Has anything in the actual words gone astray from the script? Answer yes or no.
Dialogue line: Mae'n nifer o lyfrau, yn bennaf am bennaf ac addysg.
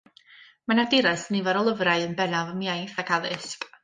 yes